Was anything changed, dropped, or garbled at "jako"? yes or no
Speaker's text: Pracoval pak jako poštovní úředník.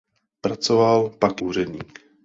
yes